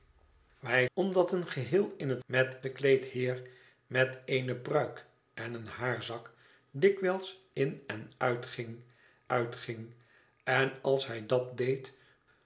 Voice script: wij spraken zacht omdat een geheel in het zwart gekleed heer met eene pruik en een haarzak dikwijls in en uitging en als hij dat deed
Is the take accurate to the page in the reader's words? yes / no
no